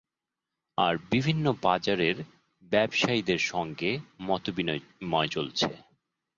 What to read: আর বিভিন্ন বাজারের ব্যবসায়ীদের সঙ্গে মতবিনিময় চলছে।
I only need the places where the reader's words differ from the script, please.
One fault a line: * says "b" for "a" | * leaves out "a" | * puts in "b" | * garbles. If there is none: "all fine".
all fine